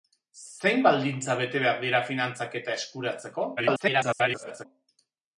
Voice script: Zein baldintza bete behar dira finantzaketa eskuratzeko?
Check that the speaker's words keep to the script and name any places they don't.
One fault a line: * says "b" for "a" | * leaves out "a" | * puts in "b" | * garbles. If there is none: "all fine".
* garbles